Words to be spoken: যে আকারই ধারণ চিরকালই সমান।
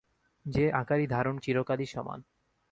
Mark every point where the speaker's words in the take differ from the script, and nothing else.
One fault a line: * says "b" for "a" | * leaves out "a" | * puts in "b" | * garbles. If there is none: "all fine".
all fine